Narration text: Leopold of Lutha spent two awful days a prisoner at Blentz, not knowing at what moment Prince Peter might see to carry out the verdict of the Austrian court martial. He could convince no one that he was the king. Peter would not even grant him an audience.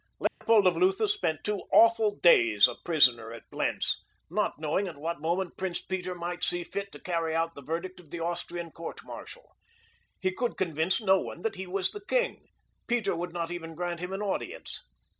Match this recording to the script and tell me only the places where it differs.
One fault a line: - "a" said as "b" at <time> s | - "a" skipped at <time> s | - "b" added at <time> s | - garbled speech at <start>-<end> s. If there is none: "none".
- "fit" added at 6.6 s